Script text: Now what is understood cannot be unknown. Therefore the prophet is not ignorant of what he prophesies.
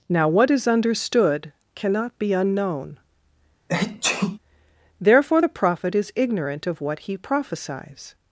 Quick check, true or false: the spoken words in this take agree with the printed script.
false